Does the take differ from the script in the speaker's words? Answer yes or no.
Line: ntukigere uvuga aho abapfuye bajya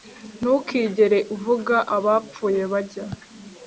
yes